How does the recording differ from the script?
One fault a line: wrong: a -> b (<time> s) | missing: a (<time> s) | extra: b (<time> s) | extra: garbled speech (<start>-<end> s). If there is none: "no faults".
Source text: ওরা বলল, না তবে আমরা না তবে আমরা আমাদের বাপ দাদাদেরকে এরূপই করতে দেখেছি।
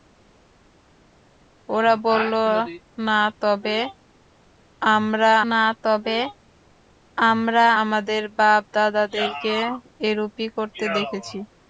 no faults